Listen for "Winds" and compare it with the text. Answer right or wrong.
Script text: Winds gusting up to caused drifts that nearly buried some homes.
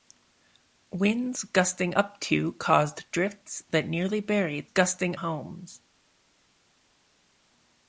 right